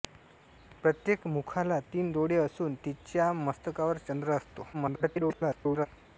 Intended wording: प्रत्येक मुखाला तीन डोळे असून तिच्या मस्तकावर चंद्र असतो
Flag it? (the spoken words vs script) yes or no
yes